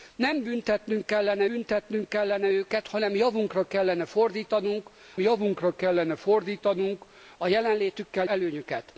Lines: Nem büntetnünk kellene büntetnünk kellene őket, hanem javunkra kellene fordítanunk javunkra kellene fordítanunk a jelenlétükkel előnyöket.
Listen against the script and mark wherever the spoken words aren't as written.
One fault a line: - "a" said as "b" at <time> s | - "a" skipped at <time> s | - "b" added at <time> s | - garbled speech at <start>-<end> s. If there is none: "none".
none